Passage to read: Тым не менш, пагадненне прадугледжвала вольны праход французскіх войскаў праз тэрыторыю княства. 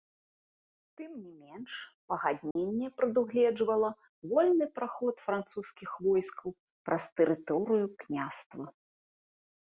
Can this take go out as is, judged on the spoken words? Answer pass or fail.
pass